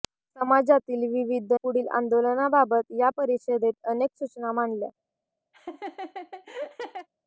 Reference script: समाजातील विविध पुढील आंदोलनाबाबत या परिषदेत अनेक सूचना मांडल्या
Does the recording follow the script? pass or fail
pass